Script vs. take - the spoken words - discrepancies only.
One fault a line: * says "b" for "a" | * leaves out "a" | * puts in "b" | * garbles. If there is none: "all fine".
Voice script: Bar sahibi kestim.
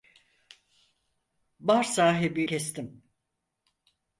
all fine